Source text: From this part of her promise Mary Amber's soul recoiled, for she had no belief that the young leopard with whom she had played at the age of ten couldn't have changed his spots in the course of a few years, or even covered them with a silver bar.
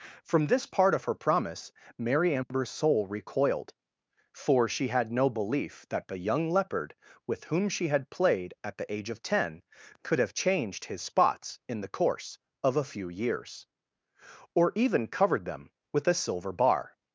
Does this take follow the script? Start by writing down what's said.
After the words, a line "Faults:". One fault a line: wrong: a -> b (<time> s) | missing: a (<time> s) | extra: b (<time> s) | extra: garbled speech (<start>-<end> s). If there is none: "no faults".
From this part of her promise Mary Amber's soul recoiled, for she had no belief that the young leopard with whom she had played at the age of ten could have changed his spots in the course of a few years, or even covered them with a silver bar.
Faults:
wrong: couldn't -> could (10.0 s)